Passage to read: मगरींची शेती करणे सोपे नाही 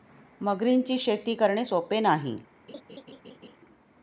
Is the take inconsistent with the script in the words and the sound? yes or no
yes